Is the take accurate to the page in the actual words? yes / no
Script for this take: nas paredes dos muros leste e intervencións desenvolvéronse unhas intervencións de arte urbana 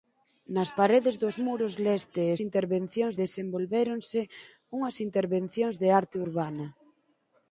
yes